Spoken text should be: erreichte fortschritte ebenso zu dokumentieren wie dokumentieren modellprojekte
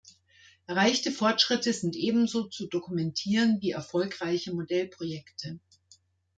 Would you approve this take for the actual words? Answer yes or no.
no